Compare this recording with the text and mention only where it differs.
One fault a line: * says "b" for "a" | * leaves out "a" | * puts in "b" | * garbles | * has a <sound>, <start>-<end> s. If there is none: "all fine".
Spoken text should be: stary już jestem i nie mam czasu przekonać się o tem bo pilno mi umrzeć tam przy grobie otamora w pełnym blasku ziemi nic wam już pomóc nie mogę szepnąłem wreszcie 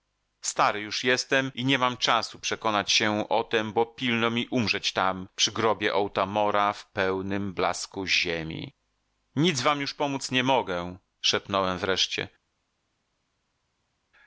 all fine